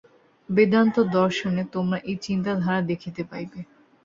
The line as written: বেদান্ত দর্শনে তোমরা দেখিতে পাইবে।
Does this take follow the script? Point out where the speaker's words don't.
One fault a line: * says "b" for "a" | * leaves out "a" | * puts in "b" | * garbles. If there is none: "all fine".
* puts in "এই চিন্তাধারা"